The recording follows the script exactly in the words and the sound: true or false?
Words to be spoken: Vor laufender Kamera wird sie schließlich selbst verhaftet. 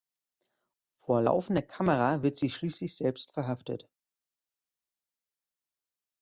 true